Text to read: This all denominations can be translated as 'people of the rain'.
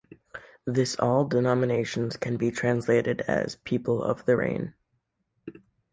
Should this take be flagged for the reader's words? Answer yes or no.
no